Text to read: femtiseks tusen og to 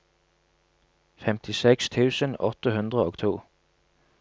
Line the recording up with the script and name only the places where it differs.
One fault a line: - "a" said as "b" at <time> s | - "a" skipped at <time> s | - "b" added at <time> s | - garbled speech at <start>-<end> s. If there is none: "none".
- "åtte hundre" added at 2.5 s